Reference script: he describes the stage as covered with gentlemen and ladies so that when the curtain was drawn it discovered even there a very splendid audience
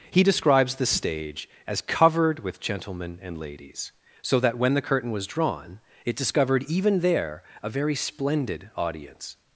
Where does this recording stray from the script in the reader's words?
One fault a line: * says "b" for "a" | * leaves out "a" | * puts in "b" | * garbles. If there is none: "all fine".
all fine